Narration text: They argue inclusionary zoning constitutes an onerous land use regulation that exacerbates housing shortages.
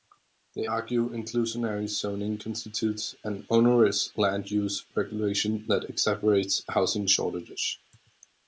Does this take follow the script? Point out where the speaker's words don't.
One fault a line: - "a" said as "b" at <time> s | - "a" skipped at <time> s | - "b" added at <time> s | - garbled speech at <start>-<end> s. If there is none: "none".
none